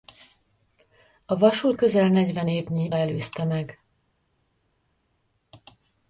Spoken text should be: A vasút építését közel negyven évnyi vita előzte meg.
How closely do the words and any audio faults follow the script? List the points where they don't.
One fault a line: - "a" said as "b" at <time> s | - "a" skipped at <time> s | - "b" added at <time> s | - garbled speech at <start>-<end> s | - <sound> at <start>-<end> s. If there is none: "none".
- "építését" skipped at 1.8 s
- "vita" skipped at 2.9 s